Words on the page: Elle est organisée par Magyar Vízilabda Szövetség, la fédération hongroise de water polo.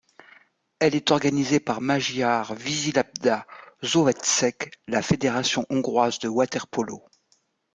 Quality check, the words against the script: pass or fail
pass